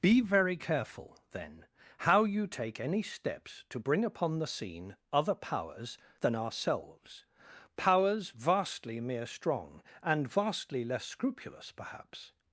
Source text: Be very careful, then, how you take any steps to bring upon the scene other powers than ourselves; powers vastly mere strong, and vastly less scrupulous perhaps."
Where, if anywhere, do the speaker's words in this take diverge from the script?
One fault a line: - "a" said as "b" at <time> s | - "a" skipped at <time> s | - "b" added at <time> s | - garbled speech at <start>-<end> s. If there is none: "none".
none